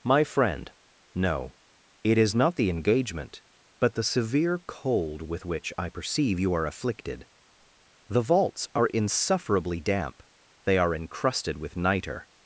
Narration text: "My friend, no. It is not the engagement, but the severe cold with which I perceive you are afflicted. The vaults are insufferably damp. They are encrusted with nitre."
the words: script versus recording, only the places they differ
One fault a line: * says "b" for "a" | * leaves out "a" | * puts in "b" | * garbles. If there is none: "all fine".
all fine